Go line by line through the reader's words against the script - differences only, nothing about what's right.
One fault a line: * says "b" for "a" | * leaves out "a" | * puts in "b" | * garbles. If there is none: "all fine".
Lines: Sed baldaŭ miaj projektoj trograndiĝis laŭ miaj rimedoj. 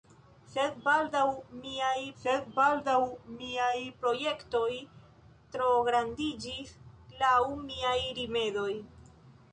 * puts in "sed baldaŭ miaj"